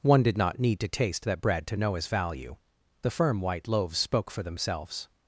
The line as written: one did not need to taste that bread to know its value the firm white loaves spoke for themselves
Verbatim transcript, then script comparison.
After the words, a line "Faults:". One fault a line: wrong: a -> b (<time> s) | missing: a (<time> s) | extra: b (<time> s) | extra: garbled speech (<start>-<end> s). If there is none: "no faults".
one did not need to taste that bread to know his value the firm white loaves spoke for themselves
Faults:
wrong: its -> his (1.9 s)